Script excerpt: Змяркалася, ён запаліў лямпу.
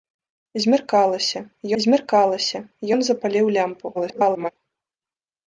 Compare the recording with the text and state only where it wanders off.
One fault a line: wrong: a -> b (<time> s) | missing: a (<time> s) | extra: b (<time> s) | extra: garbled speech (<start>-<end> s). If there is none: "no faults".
extra: змяркалася (1.8 s)
extra: garbled speech (3.9-4.5 s)